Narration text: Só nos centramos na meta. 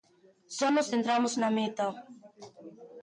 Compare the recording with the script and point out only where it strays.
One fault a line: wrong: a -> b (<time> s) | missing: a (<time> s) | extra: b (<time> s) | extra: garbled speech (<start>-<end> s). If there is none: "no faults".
no faults